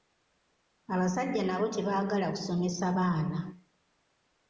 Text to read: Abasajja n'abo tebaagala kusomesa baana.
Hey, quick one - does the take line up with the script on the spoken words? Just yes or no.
yes